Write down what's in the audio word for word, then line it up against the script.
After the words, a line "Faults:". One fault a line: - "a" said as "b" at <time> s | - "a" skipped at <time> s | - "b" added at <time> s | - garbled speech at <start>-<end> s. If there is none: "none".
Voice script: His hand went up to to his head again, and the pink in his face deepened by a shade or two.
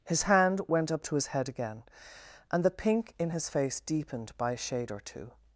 His hand went up to his head again, and the pink in his face deepened by a shade or two.
Faults:
- "to" skipped at 1.1 s